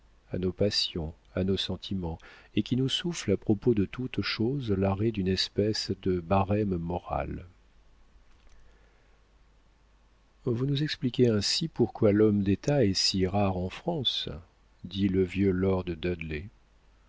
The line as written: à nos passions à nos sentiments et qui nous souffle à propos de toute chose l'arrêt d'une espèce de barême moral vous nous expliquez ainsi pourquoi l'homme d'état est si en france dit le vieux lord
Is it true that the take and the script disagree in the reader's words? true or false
true